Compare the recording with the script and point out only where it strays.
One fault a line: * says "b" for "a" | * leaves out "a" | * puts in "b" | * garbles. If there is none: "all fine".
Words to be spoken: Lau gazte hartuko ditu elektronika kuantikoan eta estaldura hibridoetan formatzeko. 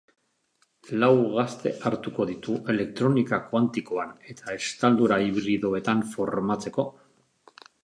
all fine